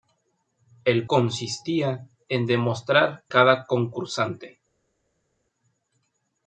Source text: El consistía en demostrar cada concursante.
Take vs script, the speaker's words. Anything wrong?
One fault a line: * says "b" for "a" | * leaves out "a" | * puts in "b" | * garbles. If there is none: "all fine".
all fine